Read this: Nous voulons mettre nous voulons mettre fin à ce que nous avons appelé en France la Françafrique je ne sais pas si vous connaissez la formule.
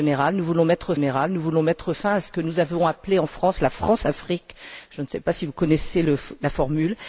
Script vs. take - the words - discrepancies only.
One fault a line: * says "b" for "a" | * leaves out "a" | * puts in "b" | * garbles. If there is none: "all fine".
all fine